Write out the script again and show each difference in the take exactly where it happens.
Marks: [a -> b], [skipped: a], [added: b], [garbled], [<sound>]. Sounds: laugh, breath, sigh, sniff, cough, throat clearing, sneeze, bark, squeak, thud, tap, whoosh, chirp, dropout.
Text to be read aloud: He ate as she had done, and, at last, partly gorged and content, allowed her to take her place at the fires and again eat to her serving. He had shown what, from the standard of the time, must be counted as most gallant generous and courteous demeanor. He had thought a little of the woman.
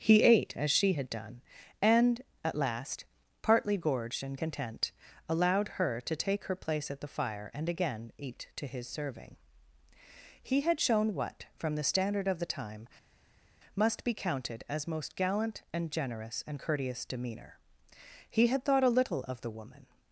He ate as she had done, and, at last, partly gorged and content, allowed her to take her place at the [fires -> fire] and again eat to [her -> his] serving. He had shown what, from the standard of the time, must be counted as most gallant [added: and] generous and courteous demeanor. He had thought a little of the woman.